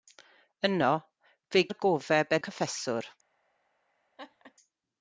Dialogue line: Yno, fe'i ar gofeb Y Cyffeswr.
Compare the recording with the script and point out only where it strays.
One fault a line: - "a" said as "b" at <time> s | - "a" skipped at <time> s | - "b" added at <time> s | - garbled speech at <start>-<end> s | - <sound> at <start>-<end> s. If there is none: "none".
- laugh at 4.2-4.5 s